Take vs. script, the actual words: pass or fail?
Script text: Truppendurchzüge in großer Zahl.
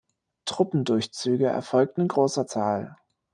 fail